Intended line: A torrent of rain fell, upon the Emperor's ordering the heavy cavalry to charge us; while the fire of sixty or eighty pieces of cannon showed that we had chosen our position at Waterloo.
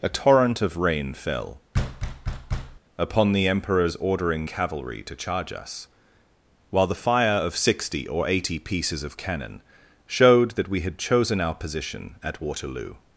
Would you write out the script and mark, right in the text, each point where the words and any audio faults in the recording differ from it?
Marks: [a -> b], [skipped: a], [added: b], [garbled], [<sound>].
A torrent of rain fell, [thud] upon the Emperor's ordering [skipped: the heavy] cavalry to charge us; while the fire of sixty or eighty pieces of cannon showed that we had chosen our position at Waterloo.